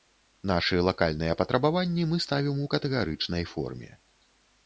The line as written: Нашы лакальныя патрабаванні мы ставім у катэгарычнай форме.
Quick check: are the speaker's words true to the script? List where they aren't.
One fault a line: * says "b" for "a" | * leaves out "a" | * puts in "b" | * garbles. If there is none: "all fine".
all fine